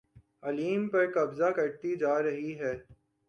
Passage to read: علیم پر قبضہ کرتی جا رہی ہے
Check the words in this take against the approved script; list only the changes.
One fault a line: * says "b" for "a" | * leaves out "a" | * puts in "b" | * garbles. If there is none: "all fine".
all fine